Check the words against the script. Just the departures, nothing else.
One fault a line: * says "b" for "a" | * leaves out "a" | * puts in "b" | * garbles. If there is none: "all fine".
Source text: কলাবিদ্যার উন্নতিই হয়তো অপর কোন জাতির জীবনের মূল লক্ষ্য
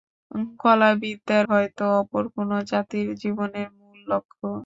* leaves out "উন্নতিই"